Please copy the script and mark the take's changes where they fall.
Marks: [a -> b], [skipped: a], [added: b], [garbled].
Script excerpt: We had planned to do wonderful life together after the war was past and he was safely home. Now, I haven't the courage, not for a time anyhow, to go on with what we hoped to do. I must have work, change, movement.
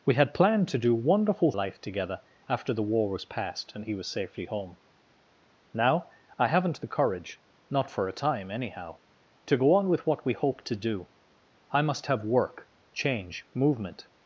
We had planned to do wonderful life together after the war was past and he was safely home. Now, I haven't the courage, not for a time anyhow, to go on with what we hoped to do. I must have work, change, movement.